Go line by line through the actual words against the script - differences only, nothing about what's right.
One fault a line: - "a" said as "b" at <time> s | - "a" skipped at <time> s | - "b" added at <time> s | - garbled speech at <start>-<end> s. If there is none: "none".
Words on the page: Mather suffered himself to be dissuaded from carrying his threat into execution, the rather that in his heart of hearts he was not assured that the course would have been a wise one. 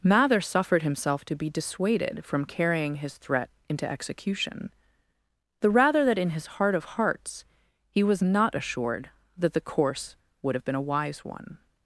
none